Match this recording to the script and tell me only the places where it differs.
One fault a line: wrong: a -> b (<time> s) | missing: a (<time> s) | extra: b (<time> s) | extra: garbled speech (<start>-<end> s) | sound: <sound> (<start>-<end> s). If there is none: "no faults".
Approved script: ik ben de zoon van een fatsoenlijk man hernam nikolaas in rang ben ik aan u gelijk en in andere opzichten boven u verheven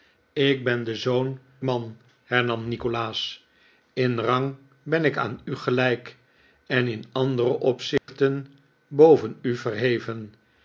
missing: van een fatsoenlijk (1.4 s)
sound: dropout (8.0-8.1 s)